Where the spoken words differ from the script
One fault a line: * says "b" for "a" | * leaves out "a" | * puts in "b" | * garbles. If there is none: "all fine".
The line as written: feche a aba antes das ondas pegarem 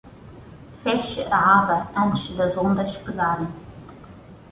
all fine